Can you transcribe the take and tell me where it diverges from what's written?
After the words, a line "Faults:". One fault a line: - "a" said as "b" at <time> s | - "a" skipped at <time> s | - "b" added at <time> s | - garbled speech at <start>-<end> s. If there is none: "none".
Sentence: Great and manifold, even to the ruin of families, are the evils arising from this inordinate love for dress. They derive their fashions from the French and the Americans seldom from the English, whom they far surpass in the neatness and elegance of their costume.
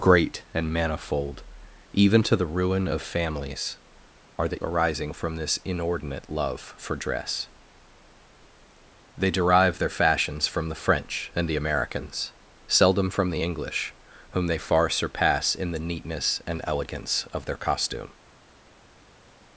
Great and manifold, even to the ruin of families, are the arising from this inordinate love for dress. They derive their fashions from the French and the Americans seldom from the English, whom they far surpass in the neatness and elegance of their costume.
Faults:
- "evils" skipped at 4.6 s